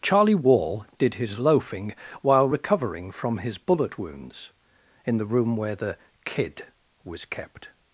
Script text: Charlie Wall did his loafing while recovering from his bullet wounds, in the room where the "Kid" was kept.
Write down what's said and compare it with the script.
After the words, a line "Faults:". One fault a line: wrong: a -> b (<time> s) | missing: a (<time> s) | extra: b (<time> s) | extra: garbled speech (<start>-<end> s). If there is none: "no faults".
Charlie Wall did his loafing while recovering from his bullet wounds, in the room where the "Kid" was kept.
Faults:
no faults